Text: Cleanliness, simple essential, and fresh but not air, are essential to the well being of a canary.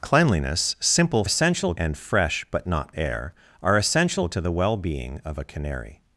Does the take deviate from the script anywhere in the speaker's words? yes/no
no